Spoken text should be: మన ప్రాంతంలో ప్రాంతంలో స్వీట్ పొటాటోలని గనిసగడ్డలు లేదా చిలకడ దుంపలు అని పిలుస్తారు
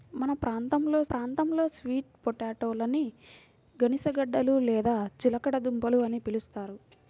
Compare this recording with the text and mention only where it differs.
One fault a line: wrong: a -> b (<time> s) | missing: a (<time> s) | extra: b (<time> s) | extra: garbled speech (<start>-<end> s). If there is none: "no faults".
no faults